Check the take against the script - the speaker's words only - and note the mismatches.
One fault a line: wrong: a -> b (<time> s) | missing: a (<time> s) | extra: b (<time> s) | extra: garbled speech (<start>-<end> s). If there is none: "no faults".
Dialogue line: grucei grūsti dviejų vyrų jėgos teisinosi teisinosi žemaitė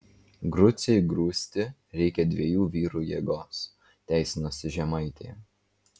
extra: reikia (2.0 s)
missing: teisinosi (4.7 s)